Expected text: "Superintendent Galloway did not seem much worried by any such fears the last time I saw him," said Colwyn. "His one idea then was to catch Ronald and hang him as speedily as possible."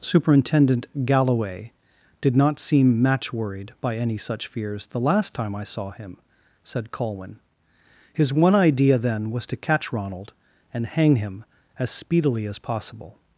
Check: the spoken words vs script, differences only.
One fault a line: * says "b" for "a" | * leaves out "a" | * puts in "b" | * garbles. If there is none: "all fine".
* says "match" for "much"